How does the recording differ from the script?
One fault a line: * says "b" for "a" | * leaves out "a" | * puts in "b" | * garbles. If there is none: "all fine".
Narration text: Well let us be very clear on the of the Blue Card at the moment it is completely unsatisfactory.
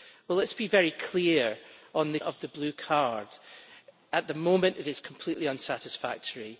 all fine